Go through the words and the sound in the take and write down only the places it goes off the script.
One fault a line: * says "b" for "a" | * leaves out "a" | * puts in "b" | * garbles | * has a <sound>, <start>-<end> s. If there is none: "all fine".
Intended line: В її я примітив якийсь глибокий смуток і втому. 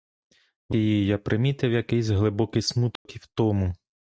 * has a dropout, 3.0-3.1 s